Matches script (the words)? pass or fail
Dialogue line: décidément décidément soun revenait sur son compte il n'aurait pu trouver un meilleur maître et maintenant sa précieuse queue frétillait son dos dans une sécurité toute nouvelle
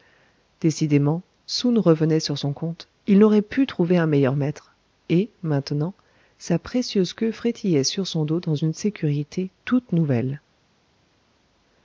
fail